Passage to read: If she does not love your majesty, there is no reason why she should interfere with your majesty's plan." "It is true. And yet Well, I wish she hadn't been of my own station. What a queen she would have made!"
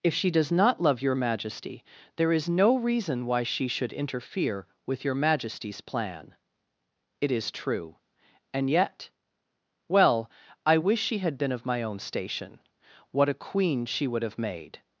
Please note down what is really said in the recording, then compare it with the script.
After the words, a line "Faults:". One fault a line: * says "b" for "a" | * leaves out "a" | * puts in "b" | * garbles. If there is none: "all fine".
If she does not love your majesty, there is no reason why she should interfere with your majesty's plan." "It is true. And yet Well, I wish she had been of my own station. What a queen she would have made!"
Faults:
* says "had" for "hadn't"